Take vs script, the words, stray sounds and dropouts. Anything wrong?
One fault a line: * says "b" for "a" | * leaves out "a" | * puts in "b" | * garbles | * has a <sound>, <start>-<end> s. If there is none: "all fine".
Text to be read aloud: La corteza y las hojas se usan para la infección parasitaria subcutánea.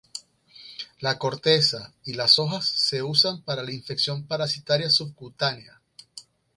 all fine